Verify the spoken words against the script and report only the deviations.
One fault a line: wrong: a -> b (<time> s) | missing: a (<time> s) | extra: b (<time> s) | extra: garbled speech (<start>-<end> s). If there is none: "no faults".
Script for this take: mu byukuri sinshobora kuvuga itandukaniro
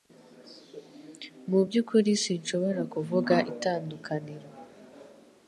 no faults